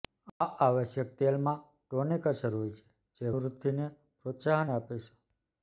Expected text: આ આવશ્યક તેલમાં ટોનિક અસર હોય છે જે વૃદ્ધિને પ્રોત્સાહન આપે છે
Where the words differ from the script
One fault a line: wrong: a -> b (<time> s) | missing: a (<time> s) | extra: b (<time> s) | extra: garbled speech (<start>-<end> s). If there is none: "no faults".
no faults